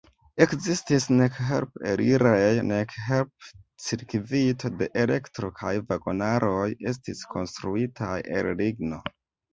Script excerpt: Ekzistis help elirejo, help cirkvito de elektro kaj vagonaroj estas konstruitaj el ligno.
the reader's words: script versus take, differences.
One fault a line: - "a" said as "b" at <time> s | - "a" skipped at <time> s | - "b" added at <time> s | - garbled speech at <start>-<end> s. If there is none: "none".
- "nek" added at 1.2 s
- "nek" added at 2.7 s
- "estas" said as "estis" at 7.0 s